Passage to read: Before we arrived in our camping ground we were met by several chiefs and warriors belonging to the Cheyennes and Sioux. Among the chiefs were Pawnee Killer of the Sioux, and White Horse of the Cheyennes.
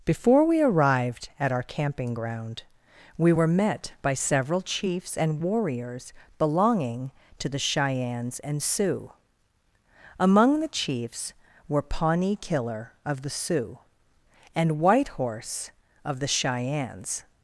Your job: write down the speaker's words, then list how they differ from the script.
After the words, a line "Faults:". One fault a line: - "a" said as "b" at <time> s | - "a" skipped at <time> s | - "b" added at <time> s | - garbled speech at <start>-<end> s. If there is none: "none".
Before we arrived at our camping ground we were met by several chiefs and warriors belonging to the Cheyennes and Sioux. Among the chiefs were Pawnee Killer of the Sioux, and White Horse of the Cheyennes.
Faults:
- "in" said as "at" at 1.4 s